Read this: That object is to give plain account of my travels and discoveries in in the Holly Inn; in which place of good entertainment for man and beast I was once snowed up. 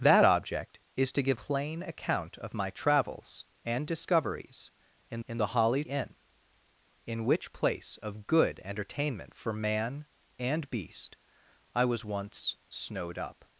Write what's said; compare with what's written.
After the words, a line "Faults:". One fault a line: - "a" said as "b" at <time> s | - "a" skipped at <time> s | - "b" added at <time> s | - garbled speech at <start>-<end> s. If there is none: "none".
That object is to give plain account of my travels and discoveries in in the Holly Inn; in which place of good entertainment for man and beast I was once snowed up.
Faults:
none